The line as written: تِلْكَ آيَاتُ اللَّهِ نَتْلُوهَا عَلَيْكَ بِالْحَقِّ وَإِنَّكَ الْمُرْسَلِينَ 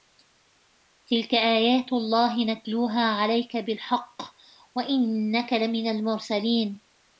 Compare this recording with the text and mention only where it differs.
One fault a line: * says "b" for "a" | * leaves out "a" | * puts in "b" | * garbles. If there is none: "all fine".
* puts in "لَمِنَ"